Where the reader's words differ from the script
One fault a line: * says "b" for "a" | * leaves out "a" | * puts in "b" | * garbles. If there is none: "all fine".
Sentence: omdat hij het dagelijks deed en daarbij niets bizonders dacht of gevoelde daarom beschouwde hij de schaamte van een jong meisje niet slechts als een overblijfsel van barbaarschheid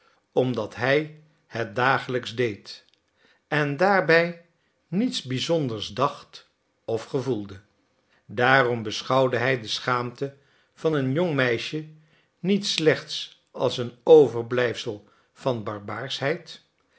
all fine